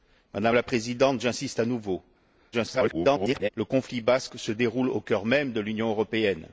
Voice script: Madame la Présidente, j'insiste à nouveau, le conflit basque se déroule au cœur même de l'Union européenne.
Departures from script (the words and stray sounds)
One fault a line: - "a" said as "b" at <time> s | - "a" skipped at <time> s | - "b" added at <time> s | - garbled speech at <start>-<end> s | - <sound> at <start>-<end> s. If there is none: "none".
- garbled speech at 2.5-3.5 s